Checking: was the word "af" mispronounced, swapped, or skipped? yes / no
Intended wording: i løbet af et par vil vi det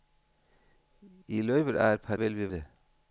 no